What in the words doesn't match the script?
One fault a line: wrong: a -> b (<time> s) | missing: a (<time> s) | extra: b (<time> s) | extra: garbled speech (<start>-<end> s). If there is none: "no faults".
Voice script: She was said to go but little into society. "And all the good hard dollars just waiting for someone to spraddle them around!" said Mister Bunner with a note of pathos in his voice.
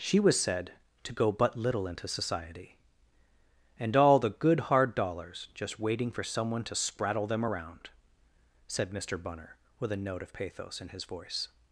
no faults